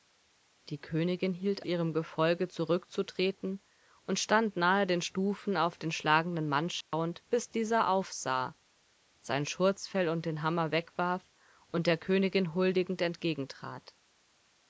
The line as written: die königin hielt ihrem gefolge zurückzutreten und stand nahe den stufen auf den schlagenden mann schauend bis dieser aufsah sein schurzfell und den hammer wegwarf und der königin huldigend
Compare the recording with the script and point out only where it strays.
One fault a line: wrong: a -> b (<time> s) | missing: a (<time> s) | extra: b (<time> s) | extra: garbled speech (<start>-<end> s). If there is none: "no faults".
no faults